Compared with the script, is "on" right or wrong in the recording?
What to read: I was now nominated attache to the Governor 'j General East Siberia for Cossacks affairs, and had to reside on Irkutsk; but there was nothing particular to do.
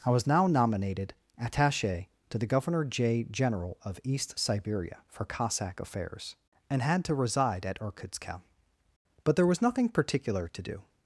wrong